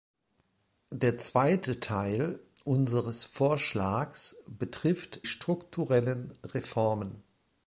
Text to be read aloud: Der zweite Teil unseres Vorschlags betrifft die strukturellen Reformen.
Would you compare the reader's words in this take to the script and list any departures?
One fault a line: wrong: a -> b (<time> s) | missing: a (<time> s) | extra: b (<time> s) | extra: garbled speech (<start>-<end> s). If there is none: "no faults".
missing: die (5.2 s)